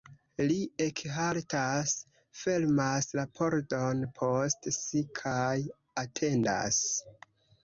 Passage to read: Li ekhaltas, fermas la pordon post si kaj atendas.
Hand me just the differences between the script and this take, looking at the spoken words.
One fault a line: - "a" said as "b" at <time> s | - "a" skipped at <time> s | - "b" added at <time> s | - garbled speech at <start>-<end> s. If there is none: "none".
none